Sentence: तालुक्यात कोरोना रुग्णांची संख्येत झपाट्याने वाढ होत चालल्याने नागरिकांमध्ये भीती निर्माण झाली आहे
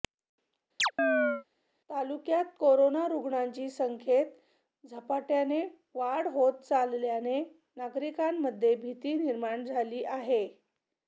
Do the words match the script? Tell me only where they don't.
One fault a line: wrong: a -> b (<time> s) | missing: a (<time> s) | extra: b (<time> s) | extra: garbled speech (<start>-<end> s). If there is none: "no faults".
no faults